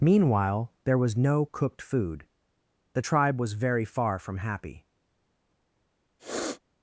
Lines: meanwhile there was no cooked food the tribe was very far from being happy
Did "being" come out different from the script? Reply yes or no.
yes